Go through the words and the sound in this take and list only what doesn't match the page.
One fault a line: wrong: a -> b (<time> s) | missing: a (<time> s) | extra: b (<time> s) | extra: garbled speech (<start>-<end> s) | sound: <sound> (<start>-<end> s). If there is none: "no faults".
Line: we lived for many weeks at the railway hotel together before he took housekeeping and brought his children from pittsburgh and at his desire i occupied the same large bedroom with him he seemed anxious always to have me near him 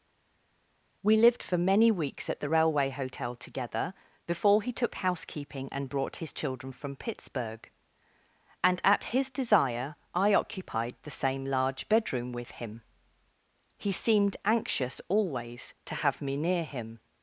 no faults